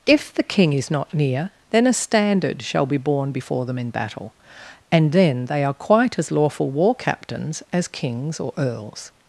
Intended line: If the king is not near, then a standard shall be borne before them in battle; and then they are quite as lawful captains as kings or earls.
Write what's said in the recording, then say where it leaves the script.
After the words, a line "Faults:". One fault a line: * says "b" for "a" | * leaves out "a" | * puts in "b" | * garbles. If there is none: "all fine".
If the king is not near, then a standard shall be borne before them in battle; and then they are quite as lawful war captains as kings or earls.
Faults:
* puts in "war"